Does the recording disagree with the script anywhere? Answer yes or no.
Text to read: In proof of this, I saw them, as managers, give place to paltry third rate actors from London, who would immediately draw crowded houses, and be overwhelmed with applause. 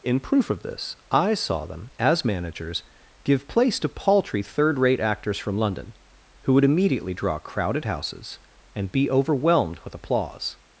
no